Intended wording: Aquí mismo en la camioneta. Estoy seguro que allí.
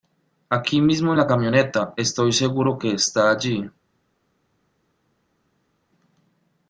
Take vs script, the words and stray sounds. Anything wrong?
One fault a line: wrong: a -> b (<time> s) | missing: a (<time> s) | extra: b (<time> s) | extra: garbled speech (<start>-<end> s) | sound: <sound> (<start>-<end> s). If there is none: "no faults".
extra: está (2.9 s)